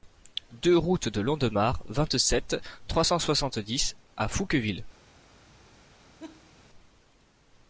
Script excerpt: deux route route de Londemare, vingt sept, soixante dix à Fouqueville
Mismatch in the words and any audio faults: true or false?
true